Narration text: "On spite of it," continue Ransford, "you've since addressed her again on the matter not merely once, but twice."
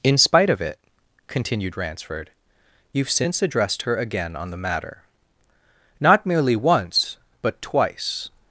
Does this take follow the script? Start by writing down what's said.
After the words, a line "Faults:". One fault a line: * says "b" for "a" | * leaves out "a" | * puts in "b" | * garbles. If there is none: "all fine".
"In spite of it," continued Ransford, "you've since addressed her again on the matter not merely once, but twice."
Faults:
* says "In" for "On"
* says "continued" for "continue"